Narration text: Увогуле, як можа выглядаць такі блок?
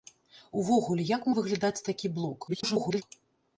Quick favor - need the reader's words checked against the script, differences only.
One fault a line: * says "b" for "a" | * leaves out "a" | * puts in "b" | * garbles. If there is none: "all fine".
* leaves out "можа"
* garbles